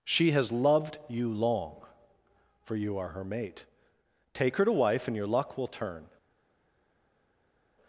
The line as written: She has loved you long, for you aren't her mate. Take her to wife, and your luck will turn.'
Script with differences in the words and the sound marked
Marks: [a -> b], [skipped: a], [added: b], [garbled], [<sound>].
She has loved you long, for you [aren't -> are] her mate. Take her to wife, and your luck will turn.'